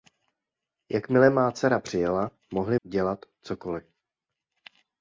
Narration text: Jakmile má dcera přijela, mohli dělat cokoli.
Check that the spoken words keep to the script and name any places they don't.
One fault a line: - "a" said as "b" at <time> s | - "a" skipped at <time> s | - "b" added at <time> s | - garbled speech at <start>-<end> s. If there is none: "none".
none